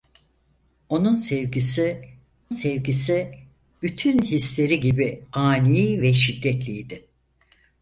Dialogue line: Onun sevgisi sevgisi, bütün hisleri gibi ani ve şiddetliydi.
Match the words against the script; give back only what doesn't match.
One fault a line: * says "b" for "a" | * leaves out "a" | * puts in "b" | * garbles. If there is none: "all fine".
all fine